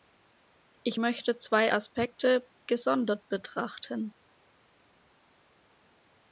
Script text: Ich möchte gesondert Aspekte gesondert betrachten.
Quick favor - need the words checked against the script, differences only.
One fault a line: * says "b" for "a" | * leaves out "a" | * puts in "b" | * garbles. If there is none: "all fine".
* says "zwei" for "gesondert"